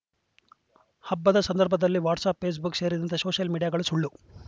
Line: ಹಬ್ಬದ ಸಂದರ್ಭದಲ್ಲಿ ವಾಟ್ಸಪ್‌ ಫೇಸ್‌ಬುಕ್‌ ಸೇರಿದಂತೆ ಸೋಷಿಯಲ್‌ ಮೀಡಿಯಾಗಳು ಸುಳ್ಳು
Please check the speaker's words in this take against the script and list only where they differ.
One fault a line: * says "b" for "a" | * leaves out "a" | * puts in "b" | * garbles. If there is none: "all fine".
all fine